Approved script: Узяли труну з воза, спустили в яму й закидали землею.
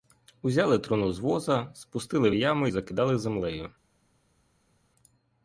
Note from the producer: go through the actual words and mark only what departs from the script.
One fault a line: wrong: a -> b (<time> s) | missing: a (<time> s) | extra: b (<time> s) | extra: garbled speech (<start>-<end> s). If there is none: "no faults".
no faults